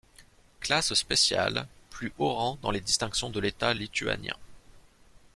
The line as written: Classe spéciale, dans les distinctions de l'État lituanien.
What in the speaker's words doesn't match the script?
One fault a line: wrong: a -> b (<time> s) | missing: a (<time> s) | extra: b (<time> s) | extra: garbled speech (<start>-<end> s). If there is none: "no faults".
extra: plus haut rang (1.9 s)